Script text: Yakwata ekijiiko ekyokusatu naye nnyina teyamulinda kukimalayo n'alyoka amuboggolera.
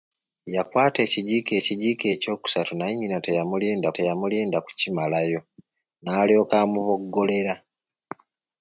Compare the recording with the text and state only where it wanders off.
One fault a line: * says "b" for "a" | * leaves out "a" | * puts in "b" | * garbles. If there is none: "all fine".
* puts in "ekijiiko"
* puts in "teyamulinda"